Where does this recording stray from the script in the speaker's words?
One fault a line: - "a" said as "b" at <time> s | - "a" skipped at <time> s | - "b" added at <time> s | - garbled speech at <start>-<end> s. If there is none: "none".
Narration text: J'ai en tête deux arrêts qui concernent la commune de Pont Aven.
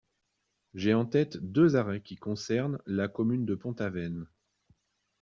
none